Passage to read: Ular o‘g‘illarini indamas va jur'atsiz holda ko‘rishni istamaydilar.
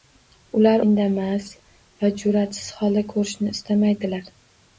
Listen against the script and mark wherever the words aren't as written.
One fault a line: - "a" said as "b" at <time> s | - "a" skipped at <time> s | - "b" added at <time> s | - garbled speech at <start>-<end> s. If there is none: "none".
- "o‘g‘illarini" skipped at 0.8 s